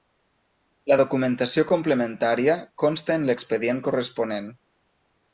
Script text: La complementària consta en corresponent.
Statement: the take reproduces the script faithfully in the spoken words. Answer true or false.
false